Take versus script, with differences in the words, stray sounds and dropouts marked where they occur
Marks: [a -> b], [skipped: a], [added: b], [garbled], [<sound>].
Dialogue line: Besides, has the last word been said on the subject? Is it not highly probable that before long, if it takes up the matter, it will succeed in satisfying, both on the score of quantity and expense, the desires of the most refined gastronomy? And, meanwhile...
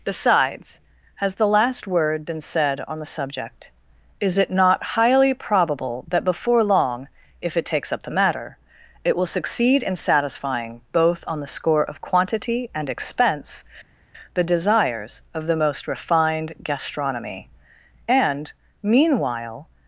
Besides, has the last word been said on the subject? Is it not highly probable that before long, if it takes up the matter, it will succeed in satisfying, both on the score of quantity and expense, the desires of the most refined gastronomy? And, meanwhile...